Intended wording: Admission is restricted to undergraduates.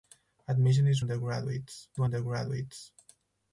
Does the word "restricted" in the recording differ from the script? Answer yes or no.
yes